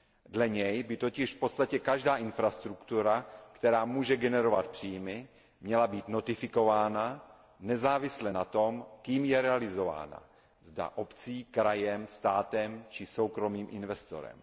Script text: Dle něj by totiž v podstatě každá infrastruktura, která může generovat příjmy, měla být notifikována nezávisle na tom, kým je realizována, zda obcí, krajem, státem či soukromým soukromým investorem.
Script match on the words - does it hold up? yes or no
no